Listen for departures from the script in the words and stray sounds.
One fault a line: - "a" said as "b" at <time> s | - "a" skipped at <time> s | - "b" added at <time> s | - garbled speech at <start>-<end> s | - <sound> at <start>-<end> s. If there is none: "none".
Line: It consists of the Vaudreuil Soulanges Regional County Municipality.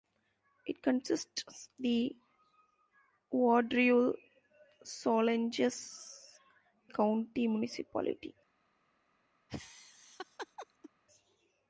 - "of" skipped at 1.7 s
- "Regional" skipped at 6.4 s
- laugh at 9.5-10.9 s